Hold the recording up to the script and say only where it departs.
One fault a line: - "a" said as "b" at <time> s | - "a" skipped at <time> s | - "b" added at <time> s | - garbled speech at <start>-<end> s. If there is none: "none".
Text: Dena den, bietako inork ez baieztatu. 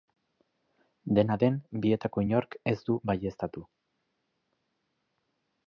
- "du" added at 2.9 s